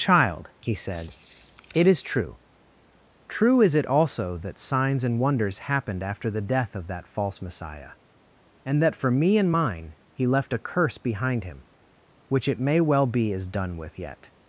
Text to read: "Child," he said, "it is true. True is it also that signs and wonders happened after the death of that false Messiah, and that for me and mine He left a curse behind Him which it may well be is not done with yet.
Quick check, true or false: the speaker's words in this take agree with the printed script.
false